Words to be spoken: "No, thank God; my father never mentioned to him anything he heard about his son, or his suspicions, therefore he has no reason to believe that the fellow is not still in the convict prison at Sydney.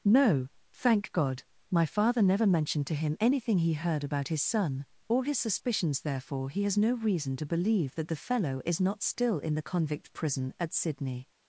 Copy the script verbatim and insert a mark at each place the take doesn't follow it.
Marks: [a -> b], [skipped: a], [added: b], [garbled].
"No, thank God; my father never mentioned to him anything he heard about his son, or his suspicions, therefore he has no reason to believe that the fellow is not still in the convict prison at Sydney.